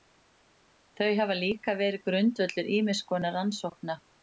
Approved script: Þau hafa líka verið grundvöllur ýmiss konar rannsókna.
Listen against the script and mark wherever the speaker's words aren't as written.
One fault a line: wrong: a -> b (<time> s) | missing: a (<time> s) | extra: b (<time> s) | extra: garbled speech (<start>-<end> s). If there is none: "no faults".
no faults